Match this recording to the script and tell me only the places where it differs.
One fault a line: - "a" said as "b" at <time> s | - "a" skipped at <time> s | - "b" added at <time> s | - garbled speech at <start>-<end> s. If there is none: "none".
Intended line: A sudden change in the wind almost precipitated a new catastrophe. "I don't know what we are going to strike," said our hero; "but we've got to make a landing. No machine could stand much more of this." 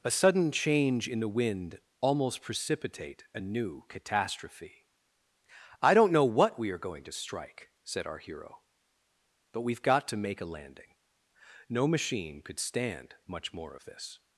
- "precipitated" said as "precipitate" at 2.4 s